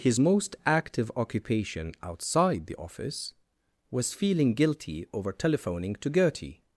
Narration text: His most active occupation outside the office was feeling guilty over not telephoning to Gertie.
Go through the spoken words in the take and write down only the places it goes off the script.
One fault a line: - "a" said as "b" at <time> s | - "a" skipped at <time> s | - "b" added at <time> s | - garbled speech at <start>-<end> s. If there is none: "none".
- "not" skipped at 5.3 s